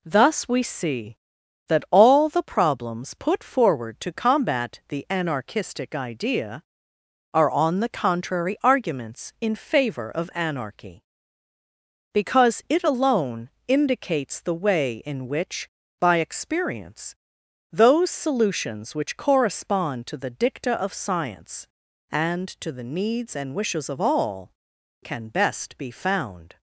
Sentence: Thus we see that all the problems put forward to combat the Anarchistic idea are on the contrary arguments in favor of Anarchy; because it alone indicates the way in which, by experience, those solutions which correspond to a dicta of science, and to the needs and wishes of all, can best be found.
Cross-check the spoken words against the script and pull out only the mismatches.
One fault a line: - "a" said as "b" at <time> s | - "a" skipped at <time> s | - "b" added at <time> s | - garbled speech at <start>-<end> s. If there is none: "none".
- "a" said as "the" at 20.2 s